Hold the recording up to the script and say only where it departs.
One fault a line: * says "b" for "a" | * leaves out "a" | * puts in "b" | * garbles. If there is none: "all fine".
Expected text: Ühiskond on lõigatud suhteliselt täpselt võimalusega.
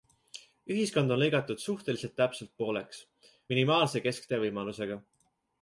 * puts in "pooleks minimaalse kesktee"